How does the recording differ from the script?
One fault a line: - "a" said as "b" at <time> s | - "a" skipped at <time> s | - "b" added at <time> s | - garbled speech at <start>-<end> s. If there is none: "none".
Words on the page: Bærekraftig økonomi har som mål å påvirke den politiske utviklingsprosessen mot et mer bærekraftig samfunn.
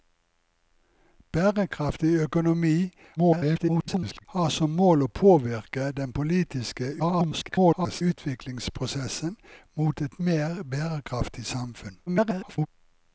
- garbled speech at 3.2-4.2 s
- garbled speech at 7.0-8.0 s
- garbled speech at 12.1-12.7 s